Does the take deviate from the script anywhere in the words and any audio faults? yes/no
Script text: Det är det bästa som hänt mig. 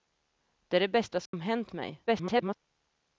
yes